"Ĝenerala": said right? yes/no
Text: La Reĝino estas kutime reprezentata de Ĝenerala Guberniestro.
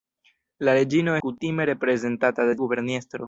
no